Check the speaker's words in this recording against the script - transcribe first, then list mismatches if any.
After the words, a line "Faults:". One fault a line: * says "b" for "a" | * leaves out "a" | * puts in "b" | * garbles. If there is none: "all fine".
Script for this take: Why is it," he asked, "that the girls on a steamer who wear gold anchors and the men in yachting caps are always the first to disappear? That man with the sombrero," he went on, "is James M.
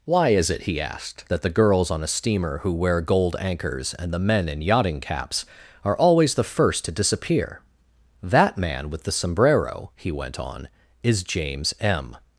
Why is it," he asked, "that the girls on a steamer who wear gold anchors and the men in yachting caps are always the first to disappear? That man with the sombrero," he went on, "is James M.
Faults:
all fine